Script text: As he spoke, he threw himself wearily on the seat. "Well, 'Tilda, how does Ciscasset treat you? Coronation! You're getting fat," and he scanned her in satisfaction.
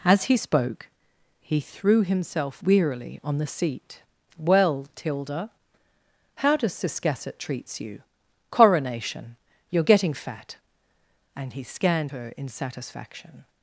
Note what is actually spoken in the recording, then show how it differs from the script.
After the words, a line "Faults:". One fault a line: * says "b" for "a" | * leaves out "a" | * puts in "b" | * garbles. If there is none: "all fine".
As he spoke, he threw himself wearily on the seat. "Well, 'Tilda, how does Ciscasset treats you? Coronation! You're getting fat," and he scanned her in satisfaction.
Faults:
* says "treats" for "treat"